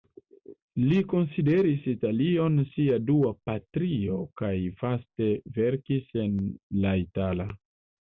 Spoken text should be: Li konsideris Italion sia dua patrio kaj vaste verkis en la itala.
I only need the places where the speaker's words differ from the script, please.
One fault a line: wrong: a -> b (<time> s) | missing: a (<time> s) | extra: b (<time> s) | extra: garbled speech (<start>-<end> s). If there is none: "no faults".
no faults